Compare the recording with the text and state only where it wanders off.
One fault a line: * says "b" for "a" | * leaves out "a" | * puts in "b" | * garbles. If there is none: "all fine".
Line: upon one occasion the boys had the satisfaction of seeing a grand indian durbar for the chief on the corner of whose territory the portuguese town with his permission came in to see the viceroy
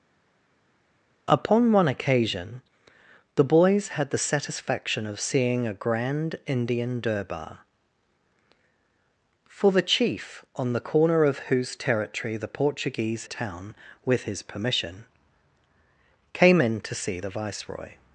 all fine